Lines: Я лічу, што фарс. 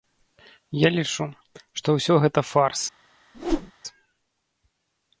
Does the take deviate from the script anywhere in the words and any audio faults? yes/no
yes